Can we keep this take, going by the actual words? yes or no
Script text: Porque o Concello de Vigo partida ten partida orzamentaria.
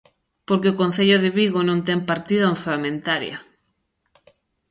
no